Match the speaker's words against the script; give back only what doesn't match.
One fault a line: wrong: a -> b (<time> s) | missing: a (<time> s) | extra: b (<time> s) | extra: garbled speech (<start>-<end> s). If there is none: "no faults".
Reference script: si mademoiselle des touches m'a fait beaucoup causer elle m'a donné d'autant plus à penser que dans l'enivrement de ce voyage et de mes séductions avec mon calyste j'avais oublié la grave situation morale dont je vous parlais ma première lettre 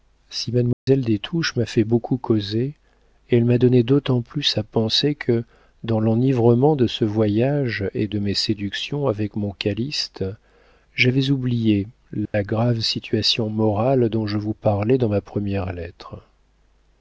extra: dans (15.0 s)